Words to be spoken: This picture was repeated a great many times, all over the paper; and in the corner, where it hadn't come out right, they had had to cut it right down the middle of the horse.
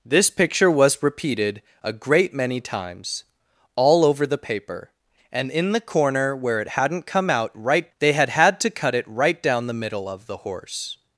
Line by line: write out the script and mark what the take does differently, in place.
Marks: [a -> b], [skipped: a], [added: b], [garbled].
This picture was repeated a great many times, all over the paper; and in the corner, where it hadn't come out right, they had had to cut it right down the middle of the horse.